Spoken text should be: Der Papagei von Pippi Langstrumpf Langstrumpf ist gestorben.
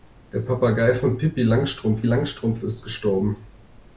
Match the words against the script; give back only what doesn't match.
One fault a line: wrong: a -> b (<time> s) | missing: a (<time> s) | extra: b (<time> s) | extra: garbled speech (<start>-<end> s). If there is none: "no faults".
no faults